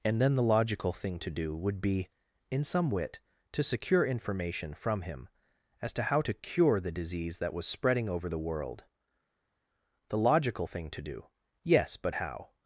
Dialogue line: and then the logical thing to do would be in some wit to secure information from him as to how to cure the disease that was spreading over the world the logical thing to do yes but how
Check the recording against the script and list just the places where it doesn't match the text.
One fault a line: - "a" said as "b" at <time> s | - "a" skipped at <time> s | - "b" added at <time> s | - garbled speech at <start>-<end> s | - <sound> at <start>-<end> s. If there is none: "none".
none